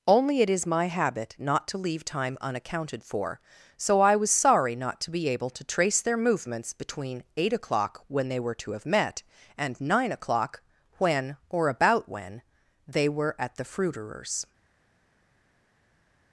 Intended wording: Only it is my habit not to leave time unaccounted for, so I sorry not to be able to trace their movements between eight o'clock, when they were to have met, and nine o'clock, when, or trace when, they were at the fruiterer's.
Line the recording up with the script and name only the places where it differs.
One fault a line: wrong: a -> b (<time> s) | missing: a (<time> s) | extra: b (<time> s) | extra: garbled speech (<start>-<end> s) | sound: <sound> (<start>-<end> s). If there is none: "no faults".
extra: was (4.2 s)
wrong: trace -> about (11.7 s)